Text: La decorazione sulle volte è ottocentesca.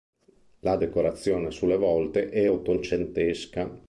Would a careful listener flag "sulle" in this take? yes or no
no